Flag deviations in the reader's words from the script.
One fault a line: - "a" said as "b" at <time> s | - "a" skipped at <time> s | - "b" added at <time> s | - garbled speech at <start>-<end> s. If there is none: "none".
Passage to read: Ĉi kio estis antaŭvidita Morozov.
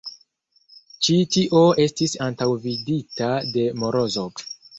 - "kio" said as "tio" at 1.4 s
- "de" added at 3.6 s